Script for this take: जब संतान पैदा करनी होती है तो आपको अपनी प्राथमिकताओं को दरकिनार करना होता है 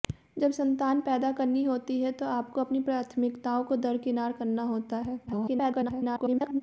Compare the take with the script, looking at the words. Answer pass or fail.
fail